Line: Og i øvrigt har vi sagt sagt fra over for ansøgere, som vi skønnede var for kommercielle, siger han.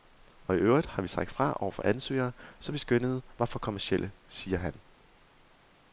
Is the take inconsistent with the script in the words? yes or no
yes